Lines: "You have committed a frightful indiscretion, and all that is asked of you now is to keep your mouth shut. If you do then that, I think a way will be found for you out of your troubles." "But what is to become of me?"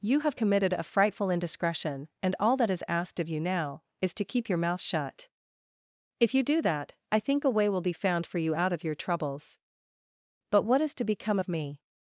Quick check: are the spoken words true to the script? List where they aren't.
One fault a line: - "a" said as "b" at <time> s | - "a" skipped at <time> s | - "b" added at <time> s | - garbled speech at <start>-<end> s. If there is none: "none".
- "then" skipped at 6.6 s